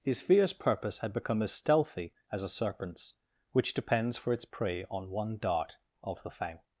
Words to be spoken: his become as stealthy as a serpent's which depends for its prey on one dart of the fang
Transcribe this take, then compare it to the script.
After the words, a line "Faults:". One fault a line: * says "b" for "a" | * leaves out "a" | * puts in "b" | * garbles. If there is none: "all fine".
his fierce purpose had become as stealthy as a serpent's which depends for its prey on one dart of the fang
Faults:
* puts in "fierce purpose had"